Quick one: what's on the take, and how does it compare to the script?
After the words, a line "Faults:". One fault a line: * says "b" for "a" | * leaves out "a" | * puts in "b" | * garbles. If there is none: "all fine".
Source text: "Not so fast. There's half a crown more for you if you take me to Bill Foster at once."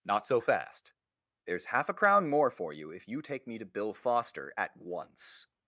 "Not so fast. There's half a crown more for you if you take me to Bill Foster at once."
Faults:
all fine